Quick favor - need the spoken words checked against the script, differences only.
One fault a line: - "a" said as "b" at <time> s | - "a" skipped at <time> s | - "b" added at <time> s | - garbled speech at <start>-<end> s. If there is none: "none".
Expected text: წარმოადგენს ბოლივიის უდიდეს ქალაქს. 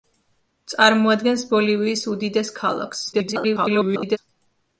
- garbled speech at 3.1-4.2 s